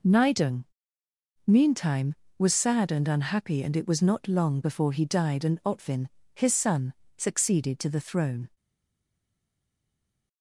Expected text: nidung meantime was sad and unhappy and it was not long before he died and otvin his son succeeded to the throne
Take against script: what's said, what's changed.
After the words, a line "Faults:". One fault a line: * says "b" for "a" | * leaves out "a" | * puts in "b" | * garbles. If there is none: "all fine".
nidung meantime was sad and unhappy and it was not long before he died and otvin his son succeeded to the throne
Faults:
all fine